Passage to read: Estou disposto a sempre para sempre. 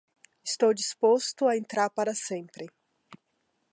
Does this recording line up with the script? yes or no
no